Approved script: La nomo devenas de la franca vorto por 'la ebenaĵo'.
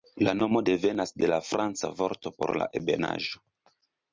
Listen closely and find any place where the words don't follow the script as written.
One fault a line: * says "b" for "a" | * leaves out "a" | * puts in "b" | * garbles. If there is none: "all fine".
all fine